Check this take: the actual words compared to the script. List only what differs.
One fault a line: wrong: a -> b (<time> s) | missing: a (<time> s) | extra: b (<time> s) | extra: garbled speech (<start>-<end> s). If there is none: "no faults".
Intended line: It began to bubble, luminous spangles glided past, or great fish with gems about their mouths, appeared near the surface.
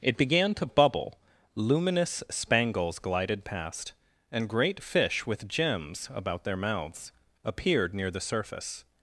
wrong: or -> and (4.3 s)